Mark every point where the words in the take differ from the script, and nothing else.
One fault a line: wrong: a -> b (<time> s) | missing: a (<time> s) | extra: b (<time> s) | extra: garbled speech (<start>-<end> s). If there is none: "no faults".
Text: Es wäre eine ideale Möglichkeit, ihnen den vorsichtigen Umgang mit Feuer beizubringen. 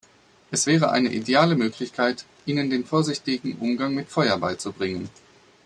no faults